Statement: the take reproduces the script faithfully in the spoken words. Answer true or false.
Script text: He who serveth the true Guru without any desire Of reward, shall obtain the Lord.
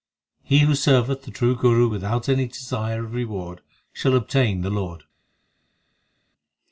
true